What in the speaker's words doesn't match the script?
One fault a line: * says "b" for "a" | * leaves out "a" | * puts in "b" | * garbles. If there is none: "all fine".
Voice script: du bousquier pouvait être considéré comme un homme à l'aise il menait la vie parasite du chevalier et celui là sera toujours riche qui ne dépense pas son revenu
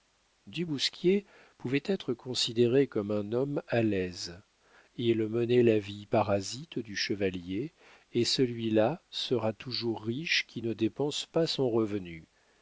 all fine